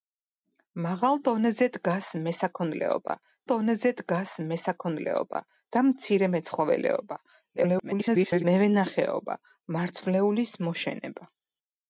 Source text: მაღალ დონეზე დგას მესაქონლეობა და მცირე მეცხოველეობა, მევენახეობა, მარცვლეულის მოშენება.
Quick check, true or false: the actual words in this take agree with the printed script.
false